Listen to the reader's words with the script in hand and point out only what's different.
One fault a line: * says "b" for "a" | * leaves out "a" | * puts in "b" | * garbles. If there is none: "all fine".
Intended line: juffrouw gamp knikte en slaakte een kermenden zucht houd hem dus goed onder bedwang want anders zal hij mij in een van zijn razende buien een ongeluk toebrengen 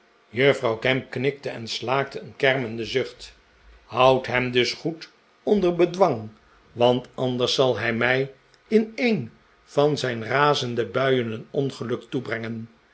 all fine